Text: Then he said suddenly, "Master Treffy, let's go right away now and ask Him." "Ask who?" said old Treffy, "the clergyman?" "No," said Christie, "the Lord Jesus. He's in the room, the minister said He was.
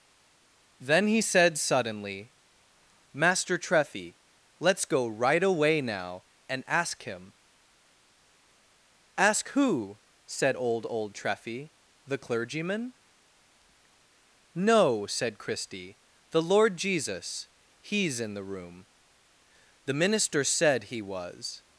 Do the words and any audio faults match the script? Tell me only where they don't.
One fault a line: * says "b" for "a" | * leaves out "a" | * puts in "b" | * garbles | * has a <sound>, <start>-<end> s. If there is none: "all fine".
* puts in "old"